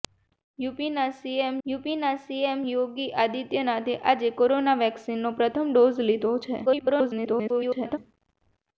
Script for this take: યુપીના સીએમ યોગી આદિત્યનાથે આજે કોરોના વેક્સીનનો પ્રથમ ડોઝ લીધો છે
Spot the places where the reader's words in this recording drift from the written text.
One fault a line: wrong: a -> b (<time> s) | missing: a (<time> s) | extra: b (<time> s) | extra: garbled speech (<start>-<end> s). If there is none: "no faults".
extra: યુપીના સીએમ (1.7 s)
extra: garbled speech (6.6-8.0 s)